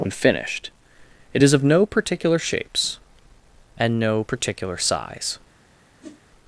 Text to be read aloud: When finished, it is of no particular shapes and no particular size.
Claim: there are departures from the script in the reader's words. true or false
false